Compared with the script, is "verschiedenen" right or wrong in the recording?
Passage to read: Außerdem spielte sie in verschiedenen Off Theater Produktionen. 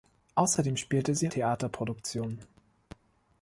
wrong